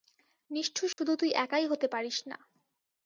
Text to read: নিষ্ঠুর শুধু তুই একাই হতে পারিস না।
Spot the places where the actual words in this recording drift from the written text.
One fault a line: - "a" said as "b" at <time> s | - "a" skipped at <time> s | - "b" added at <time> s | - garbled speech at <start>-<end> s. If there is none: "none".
none